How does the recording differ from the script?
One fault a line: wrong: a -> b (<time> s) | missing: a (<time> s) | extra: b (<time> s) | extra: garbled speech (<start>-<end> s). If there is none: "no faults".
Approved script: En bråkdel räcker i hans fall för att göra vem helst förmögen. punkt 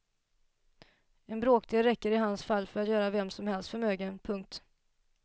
extra: som (3.3 s)